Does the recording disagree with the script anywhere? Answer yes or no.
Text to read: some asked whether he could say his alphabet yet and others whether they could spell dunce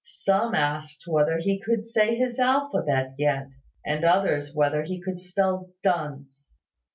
yes